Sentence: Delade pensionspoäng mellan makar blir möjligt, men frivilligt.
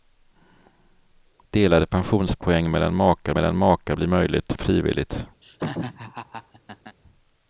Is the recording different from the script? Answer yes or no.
yes